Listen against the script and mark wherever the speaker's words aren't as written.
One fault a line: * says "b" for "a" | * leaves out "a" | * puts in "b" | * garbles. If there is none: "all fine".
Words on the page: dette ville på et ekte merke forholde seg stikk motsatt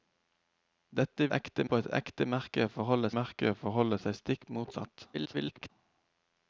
* says "ekte" for "ville"
* puts in "merke forholde"
* garbles